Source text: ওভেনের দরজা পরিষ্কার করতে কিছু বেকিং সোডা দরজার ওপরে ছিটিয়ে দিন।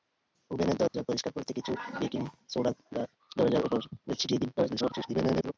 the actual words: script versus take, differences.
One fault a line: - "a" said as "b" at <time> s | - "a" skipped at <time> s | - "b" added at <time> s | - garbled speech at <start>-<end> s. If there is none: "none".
- garbled speech at 4.6-5.5 s